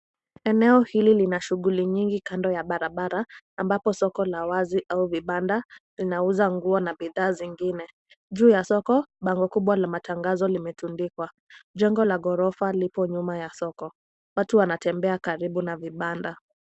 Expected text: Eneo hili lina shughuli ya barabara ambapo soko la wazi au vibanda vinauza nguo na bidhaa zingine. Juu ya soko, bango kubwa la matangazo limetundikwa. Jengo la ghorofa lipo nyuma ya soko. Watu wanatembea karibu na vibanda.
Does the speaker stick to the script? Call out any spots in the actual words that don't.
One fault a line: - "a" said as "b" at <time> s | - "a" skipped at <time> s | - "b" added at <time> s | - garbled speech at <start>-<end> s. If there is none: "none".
- "nyingi kando" added at 1.9 s